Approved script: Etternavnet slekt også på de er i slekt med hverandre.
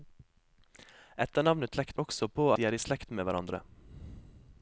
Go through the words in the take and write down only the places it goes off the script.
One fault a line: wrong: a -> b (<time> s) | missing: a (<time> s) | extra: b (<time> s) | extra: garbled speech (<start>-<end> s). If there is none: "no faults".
no faults